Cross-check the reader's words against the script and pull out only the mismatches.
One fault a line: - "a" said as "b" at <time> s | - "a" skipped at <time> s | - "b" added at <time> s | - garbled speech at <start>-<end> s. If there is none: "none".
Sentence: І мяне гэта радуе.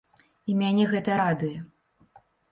none